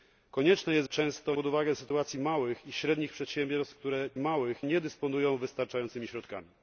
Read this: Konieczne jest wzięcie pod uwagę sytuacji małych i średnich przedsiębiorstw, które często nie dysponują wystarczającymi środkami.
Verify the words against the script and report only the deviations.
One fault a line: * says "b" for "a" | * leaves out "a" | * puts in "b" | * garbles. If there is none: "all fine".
* says "często" for "wzięcie"
* says "małych" for "często"